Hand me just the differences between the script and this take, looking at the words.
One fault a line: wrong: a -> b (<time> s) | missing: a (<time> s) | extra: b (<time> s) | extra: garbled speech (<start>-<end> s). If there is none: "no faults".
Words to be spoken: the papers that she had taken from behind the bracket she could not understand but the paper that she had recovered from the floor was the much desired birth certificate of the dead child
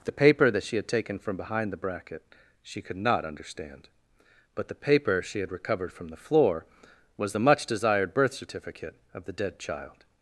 wrong: papers -> paper (0.1 s)
missing: that (5.2 s)